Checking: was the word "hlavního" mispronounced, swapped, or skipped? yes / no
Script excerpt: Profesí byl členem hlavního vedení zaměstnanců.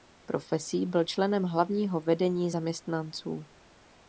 no